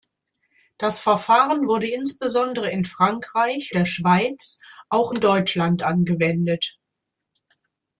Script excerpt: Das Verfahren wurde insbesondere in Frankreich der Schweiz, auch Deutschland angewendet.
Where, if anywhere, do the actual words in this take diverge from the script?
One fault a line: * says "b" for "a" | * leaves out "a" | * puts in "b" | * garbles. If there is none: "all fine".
all fine